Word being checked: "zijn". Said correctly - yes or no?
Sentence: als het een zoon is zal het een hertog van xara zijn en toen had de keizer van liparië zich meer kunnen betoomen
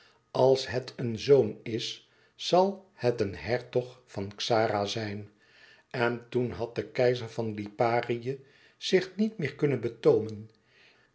yes